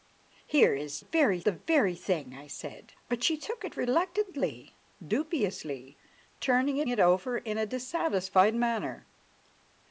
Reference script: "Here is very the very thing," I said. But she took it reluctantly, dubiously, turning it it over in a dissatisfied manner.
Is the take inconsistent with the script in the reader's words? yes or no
no